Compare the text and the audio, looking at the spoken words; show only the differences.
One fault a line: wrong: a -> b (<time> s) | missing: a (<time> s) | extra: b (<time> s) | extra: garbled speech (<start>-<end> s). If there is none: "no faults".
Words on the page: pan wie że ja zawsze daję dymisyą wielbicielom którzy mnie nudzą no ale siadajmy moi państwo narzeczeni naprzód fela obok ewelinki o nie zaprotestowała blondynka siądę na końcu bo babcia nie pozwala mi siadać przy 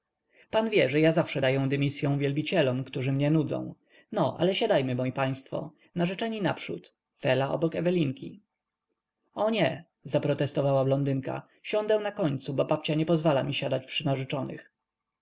no faults